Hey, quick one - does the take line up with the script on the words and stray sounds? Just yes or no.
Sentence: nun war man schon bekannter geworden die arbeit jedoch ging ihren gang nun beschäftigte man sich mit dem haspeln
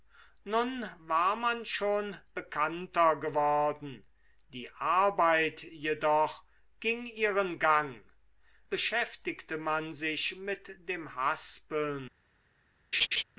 no